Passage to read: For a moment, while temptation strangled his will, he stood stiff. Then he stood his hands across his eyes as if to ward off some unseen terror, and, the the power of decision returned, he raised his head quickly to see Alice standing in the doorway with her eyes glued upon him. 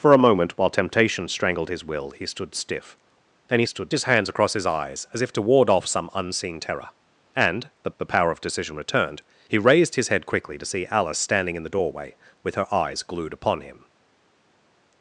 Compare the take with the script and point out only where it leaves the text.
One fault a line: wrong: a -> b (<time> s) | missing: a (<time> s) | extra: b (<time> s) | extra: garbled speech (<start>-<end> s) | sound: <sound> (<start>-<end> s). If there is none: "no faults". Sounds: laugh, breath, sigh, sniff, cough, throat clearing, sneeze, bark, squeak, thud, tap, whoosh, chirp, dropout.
no faults